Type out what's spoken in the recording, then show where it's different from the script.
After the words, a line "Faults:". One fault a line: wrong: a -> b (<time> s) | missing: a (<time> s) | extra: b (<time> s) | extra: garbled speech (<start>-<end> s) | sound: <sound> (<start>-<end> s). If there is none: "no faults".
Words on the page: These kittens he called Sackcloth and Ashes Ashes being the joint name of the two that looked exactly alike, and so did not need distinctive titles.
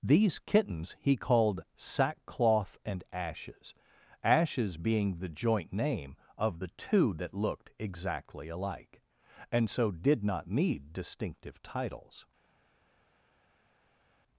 These kittens he called Sackcloth and Ashes Ashes being the joint name of the two that looked exactly alike, and so did not need distinctive titles.
Faults:
no faults